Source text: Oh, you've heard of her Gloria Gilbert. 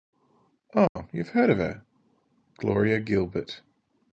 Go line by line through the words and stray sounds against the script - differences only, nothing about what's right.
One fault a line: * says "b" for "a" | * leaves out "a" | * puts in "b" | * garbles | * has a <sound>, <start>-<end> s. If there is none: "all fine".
* has a dropout, 0.9-1.0 s